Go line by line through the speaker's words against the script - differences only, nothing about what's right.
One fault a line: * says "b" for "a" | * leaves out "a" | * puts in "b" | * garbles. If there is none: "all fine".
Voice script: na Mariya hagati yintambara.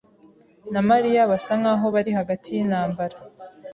* puts in "basa nkaho bari"